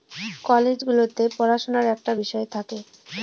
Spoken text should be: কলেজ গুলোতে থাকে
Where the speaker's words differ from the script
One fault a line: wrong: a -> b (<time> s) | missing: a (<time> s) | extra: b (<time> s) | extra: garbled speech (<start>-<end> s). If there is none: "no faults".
extra: পড়াশুনার একটা বিষয় (1.4 s)